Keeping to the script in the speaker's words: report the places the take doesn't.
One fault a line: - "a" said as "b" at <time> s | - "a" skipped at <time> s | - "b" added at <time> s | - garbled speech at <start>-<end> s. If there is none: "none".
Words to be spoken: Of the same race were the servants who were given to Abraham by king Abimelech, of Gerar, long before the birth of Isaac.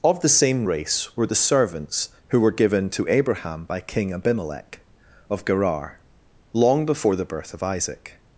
none